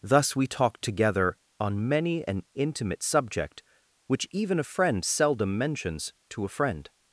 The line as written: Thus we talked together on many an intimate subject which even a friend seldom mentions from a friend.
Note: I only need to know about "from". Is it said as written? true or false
false